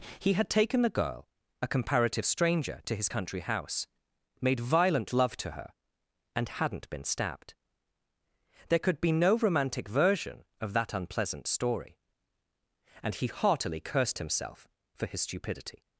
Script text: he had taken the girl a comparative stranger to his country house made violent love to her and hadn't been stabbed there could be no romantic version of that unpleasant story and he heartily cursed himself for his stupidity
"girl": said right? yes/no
yes